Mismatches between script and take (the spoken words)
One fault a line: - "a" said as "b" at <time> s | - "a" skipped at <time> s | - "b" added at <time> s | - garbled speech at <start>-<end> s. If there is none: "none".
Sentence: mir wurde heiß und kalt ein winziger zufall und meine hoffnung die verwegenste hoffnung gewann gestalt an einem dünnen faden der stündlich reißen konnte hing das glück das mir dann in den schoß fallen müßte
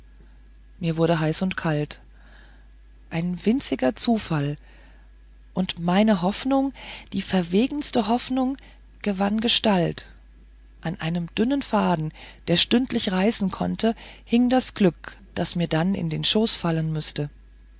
none